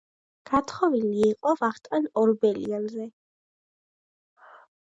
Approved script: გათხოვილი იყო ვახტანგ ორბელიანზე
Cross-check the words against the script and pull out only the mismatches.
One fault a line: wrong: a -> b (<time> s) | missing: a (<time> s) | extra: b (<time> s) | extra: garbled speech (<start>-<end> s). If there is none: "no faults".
no faults